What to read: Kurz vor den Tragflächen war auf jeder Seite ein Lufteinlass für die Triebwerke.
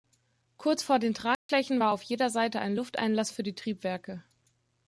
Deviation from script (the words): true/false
false